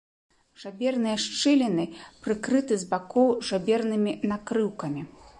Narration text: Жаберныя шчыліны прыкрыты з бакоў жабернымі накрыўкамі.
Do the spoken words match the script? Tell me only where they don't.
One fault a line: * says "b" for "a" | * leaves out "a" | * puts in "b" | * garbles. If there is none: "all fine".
all fine